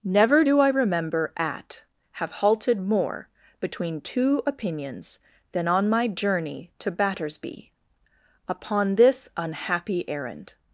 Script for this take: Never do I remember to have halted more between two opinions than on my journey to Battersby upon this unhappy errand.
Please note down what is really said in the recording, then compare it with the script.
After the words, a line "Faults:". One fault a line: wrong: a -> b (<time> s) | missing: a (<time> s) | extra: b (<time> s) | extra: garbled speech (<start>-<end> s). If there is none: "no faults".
Never do I remember at have halted more between two opinions than on my journey to Battersby upon this unhappy errand.
Faults:
wrong: to -> at (1.4 s)